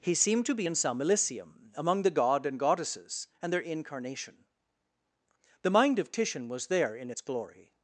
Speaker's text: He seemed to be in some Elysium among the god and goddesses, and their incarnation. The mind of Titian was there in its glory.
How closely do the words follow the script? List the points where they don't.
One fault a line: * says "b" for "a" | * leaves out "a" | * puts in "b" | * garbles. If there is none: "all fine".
all fine